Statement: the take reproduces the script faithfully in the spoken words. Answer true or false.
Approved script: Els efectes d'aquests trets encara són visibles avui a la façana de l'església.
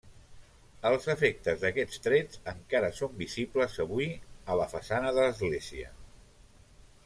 true